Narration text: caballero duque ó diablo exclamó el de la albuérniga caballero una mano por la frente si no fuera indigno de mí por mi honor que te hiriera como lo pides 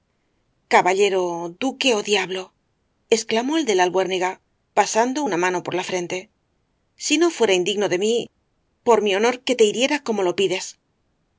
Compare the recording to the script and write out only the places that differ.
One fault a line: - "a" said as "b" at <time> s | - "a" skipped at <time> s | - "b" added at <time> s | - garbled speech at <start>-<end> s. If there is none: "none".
- "caballero" said as "pasando" at 4.8 s